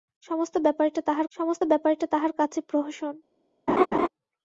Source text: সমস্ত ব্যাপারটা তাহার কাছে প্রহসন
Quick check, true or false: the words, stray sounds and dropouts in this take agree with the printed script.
false